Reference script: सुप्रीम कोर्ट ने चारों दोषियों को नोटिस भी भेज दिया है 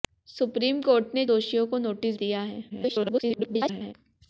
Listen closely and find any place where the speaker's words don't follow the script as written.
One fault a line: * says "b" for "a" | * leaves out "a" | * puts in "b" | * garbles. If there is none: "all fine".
* leaves out "चारों"
* leaves out "भी भेज"
* garbles